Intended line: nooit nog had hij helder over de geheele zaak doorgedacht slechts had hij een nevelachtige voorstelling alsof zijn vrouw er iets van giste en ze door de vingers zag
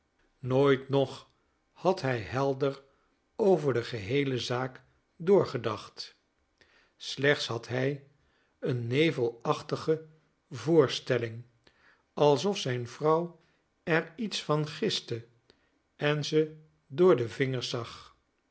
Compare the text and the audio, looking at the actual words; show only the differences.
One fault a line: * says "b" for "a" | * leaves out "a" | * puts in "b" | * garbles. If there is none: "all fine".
all fine